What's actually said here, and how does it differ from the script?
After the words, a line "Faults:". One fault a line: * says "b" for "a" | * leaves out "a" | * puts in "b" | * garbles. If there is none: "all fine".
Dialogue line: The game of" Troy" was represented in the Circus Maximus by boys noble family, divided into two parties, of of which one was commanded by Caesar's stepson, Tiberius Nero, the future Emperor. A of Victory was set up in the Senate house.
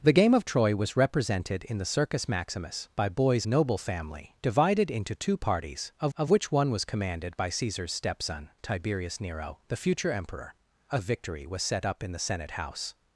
The game of" Troy" was represented in the Circus Maximus by boys noble family, divided into two parties, of of which one was commanded by Caesar's stepson, Tiberius Nero, the future Emperor. A of Victory was set up in the Senate house.
Faults:
all fine